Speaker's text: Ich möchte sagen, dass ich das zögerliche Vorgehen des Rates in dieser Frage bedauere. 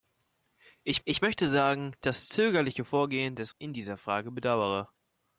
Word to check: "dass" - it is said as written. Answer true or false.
false